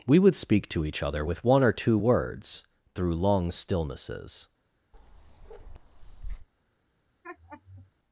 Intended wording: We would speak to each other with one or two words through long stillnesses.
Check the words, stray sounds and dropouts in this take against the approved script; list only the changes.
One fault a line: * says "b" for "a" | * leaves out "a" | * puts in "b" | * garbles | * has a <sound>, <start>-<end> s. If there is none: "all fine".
* has a bark, 4.9-6.5 s
* has a laugh, 7.2-7.9 s